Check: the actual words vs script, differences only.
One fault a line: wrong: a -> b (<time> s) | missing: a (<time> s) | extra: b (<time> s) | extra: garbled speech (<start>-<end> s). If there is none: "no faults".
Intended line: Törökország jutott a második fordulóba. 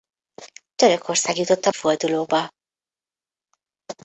missing: második (1.7 s)